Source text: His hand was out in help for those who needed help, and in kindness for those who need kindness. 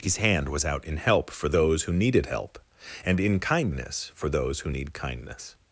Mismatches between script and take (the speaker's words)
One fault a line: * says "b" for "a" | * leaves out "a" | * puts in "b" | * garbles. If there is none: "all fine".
all fine